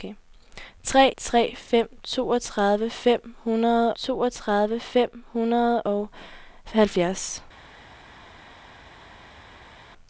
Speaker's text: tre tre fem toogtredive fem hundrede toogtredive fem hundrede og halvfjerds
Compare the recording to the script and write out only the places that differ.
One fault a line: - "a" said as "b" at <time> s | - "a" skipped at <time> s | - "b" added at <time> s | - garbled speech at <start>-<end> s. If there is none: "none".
none